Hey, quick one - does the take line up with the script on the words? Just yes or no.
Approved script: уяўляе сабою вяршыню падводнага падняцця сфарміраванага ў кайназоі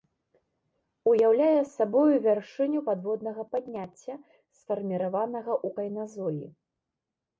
yes